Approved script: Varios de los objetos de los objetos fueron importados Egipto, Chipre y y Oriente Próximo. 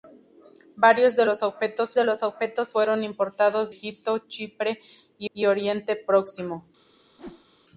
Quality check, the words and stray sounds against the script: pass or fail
fail